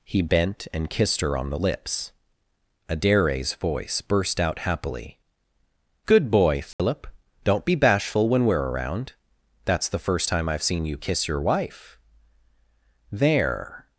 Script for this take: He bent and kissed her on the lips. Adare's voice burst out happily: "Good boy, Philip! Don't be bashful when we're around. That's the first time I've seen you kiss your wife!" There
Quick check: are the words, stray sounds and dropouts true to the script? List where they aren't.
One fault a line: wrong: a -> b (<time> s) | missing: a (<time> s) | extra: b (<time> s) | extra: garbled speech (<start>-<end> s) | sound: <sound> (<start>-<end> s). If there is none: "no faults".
sound: dropout (6.7-6.8 s)